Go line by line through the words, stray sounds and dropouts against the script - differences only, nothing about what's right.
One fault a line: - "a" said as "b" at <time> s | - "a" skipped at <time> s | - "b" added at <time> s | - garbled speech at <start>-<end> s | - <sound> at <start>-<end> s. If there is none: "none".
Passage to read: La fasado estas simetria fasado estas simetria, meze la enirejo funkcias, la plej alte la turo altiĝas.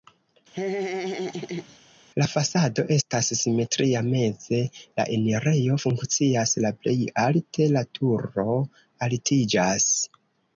- laugh at 0.5-1.8 s
- "fasado estas simetria" skipped at 4.0 s